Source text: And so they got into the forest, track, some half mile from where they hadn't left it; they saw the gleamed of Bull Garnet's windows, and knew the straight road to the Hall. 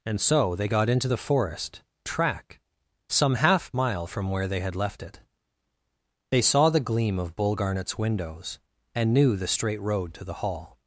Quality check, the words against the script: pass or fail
fail